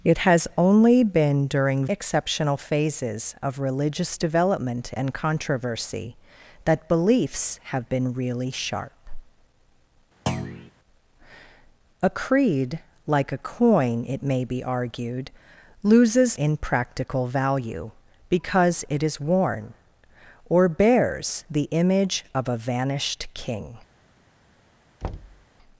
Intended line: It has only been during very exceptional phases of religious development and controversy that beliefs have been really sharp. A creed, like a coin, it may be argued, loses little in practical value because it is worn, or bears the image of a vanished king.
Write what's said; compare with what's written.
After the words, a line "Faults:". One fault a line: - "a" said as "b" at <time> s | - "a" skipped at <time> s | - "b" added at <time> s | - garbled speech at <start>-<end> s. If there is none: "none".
It has only been during exceptional phases of religious development and controversy that beliefs have been really sharp. A creed, like a coin, it may be argued, loses in practical value because it is worn, or bears the image of a vanished king.
Faults:
- "very" skipped at 1.9 s
- "little" skipped at 16.4 s